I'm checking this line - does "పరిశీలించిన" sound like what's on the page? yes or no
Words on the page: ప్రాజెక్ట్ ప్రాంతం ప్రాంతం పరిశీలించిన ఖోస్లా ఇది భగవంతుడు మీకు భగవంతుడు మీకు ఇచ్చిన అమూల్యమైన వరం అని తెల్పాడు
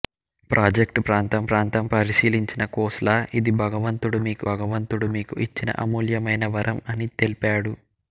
yes